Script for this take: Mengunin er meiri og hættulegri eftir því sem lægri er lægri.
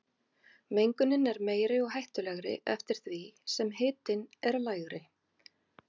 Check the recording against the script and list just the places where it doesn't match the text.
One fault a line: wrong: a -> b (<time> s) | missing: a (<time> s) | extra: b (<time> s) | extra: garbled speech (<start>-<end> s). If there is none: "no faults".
wrong: lægri -> hitinn (3.8 s)